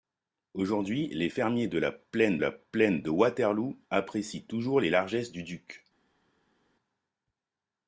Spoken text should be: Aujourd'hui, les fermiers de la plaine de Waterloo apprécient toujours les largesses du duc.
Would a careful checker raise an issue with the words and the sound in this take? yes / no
yes